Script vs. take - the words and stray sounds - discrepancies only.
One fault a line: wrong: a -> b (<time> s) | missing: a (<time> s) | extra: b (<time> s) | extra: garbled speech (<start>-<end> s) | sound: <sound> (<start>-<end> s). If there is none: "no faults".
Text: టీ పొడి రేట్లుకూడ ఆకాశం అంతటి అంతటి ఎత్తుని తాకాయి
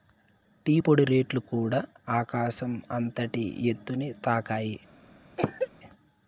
missing: అంతటి (3.4 s)
sound: cough (5.4-5.7 s)